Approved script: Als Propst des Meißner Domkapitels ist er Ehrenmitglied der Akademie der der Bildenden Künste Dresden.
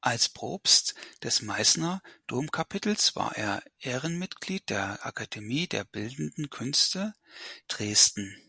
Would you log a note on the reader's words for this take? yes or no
yes